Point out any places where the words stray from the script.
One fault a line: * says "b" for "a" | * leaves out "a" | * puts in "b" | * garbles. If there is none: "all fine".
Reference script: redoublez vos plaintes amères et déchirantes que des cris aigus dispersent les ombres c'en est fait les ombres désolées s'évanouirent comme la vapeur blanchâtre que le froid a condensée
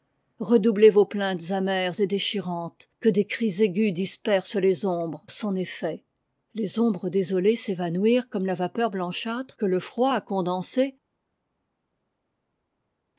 all fine